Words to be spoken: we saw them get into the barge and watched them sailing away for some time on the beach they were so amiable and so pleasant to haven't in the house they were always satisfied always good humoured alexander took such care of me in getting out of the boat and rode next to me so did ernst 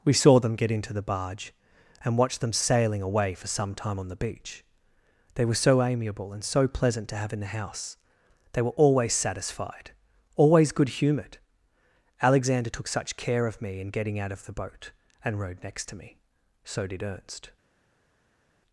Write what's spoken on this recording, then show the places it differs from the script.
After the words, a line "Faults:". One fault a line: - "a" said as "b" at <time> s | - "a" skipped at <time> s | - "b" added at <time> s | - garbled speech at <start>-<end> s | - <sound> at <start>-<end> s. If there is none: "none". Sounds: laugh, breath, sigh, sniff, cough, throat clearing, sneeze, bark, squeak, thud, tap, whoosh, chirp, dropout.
we saw them get into the barge and watched them sailing away for some time on the beach they were so amiable and so pleasant to have in the house they were always satisfied always good humoured alexander took such care of me in getting out of the boat and rode next to me so did ernst
Faults:
- "haven't" said as "have" at 7.2 s